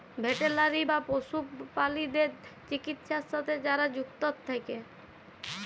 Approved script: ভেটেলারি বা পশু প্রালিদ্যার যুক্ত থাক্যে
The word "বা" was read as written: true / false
true